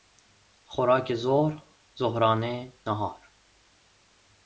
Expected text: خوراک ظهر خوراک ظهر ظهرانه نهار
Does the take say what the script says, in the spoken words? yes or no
no